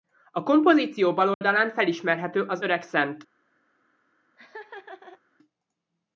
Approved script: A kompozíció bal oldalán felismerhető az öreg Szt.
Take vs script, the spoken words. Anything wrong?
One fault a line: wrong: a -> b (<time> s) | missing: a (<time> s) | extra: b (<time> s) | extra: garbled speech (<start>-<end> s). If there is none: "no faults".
no faults